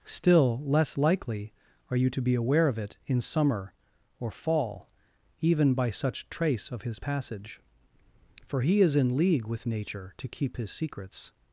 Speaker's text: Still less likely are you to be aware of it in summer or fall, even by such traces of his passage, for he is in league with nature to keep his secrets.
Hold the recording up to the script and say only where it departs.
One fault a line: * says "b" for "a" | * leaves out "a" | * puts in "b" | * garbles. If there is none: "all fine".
* says "trace" for "traces"